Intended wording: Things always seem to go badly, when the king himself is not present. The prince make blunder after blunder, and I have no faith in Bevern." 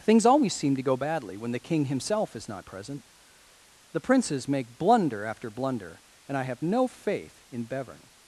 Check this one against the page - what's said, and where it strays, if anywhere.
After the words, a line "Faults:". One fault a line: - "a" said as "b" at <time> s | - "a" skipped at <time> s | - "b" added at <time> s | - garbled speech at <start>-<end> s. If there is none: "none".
Things always seem to go badly, when the king himself is not present. The princes make blunder after blunder, and I have no faith in Bevern."
Faults:
- "prince" said as "princes" at 4.0 s